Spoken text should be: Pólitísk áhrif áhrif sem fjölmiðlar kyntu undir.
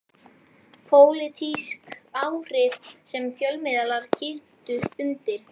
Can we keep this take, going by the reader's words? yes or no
no